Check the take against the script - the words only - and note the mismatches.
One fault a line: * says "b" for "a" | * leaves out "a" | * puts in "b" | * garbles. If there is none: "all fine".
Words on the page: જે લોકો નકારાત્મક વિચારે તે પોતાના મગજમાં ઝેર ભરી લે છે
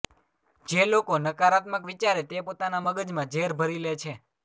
all fine